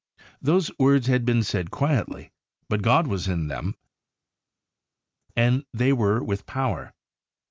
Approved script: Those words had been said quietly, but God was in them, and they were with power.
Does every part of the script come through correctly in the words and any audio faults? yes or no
yes